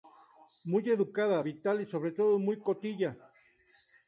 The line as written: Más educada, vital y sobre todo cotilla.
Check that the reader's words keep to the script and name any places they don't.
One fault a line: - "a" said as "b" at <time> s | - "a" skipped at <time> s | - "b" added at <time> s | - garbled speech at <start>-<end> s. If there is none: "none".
- "Más" said as "Muy" at 0.7 s
- "muy" added at 2.4 s